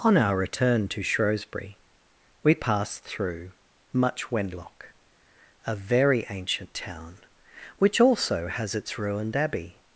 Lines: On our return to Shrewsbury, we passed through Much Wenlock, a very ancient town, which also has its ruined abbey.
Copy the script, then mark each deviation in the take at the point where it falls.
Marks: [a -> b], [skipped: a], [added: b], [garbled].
On our return to Shrewsbury, we passed through Much Wenlock, a very ancient town, which also has its ruined abbey.